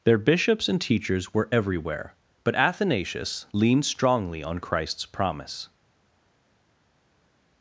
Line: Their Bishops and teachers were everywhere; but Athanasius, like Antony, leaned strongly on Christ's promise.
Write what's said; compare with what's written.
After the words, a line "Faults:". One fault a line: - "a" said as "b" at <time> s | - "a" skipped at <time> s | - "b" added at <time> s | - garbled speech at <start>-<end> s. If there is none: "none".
Their Bishops and teachers were everywhere; but Athanasius, leaned strongly on Christ's promise.
Faults:
- "like Antony" skipped at 3.5 s